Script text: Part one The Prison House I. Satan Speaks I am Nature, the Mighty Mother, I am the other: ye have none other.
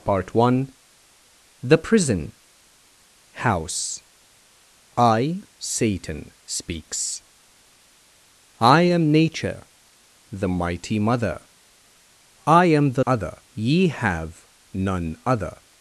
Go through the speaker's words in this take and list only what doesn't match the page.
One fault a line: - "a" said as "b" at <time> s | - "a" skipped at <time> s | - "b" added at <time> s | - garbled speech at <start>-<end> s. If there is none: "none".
none